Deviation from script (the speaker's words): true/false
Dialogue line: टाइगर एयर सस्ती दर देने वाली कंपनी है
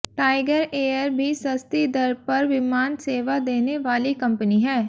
true